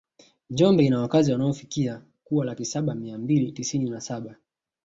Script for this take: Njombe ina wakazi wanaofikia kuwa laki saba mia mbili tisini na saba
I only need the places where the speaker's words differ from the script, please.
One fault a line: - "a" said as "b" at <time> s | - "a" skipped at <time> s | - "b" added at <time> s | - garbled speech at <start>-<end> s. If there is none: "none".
none